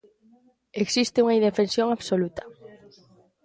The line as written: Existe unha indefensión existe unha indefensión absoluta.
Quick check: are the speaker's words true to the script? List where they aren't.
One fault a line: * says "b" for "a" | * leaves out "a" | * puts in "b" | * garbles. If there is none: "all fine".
* leaves out "existe unha indefensión"